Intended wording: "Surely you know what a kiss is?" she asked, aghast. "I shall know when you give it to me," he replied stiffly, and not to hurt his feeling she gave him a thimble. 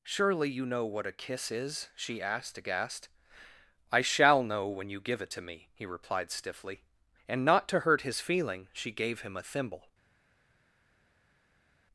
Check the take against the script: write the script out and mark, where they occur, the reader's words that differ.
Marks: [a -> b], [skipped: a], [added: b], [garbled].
"Surely you know what a kiss is?" she asked, aghast. "I shall know when you give it to me," he replied stiffly, and not to hurt his feeling she gave him a thimble.